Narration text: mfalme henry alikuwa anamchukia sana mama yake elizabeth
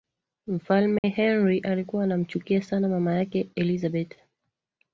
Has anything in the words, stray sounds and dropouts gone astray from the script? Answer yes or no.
yes